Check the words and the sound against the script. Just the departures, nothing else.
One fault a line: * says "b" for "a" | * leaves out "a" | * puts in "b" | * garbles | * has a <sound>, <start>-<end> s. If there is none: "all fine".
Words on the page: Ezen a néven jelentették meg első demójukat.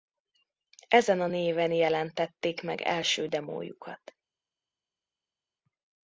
all fine